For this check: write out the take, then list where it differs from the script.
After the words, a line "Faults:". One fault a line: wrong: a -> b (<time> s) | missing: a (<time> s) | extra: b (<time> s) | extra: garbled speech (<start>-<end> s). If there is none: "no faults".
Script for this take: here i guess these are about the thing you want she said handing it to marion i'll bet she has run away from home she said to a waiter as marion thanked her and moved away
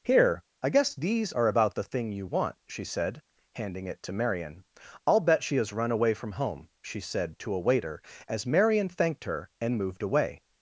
here i guess these are about the thing you want she said handing it to marion i'll bet she has run away from home she said to a waiter as marion thanked her and moved away
Faults:
no faults